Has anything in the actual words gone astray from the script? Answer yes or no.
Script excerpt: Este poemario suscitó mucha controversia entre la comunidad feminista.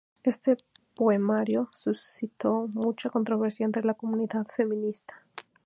no